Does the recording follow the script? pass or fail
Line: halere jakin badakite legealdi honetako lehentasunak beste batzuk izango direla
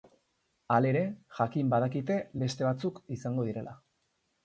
fail